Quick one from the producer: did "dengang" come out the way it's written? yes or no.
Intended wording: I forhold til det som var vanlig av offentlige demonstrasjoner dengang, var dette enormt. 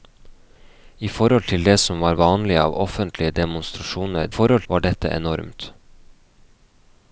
no